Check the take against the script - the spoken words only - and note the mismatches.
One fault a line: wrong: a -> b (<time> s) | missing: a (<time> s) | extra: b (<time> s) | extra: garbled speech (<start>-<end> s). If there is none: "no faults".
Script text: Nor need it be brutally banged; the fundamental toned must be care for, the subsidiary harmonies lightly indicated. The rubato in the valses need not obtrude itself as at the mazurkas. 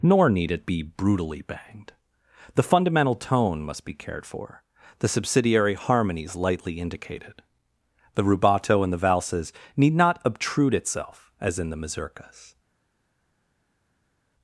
wrong: toned -> tone (3.1 s)
wrong: care -> cared (3.9 s)
wrong: at -> in (11.6 s)